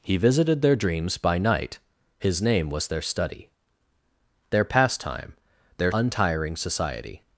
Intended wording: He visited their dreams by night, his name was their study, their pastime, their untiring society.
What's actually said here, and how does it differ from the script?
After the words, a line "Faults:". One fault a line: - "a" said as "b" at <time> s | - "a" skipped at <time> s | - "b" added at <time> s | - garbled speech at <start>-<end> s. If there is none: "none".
He visited their dreams by night, his name was their study, their pastime, their untiring society.
Faults:
none